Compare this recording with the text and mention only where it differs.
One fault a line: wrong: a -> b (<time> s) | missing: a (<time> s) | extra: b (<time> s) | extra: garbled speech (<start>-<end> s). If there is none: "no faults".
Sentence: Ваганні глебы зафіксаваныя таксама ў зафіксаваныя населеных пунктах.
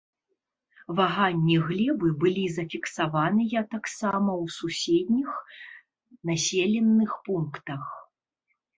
extra: былі (2.2 s)
wrong: зафіксаваныя -> суседніх (4.6 s)